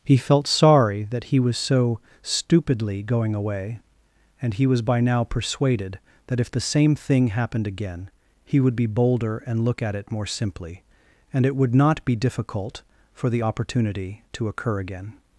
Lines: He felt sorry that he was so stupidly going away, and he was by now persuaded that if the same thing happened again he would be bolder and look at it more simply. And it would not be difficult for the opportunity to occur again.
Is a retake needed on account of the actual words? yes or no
no